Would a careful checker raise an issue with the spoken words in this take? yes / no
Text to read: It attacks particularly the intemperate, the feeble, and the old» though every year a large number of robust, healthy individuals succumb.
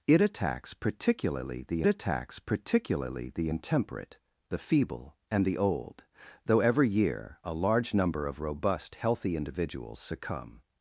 yes